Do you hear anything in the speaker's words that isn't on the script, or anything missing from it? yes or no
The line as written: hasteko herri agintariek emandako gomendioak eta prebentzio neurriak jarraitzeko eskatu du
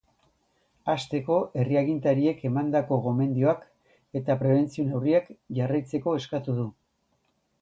no